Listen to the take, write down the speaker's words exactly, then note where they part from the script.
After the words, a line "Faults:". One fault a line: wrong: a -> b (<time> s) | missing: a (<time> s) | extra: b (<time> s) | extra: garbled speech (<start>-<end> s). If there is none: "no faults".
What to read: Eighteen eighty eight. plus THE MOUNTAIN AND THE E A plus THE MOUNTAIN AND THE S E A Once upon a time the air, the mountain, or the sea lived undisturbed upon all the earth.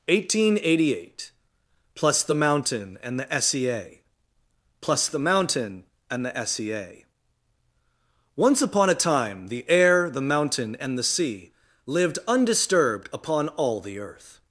Eighteen eighty eight. plus THE MOUNTAIN AND THE S E A plus THE MOUNTAIN AND THE S E A Once upon a time the air, the mountain, and the sea lived undisturbed upon all the earth.
Faults:
extra: S (3.3 s)
wrong: or -> and (10.8 s)